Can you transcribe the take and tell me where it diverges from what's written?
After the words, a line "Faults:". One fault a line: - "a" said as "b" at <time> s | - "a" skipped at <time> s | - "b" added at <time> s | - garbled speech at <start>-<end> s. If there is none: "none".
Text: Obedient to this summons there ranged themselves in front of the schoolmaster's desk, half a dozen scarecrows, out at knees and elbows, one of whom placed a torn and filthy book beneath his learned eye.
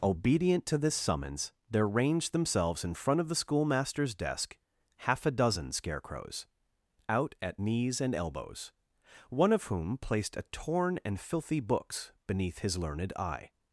Obedient to this summons there ranged themselves in front of the schoolmaster's desk, half a dozen scarecrows, out at knees and elbows, one of whom placed a torn and filthy books beneath his learned eye.
Faults:
- "book" said as "books" at 11.6 s